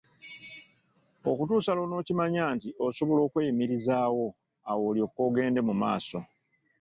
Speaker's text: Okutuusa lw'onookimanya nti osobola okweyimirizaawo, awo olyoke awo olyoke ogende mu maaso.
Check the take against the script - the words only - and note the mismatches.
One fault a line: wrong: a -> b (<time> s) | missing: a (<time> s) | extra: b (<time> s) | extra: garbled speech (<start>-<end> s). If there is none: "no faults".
missing: awo olyoke (5.2 s)